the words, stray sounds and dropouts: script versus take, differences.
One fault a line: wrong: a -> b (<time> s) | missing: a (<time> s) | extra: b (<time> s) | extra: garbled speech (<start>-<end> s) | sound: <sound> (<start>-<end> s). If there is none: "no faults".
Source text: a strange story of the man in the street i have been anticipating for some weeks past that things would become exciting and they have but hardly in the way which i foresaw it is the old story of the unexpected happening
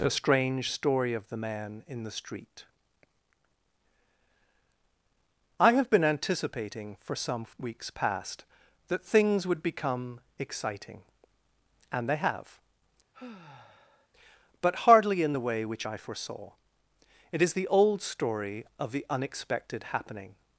sound: sigh (13.1-14.1 s)